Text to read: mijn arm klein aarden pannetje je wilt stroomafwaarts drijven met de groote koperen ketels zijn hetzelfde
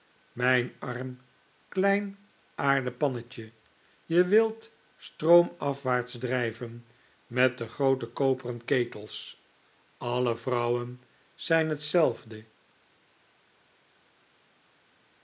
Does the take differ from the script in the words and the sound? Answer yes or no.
yes